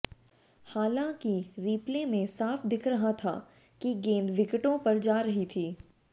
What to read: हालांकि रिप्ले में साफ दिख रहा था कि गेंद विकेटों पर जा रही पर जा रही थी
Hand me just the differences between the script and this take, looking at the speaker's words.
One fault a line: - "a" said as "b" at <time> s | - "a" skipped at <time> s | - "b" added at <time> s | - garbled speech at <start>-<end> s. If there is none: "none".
- "पर जा रही" skipped at 5.4 s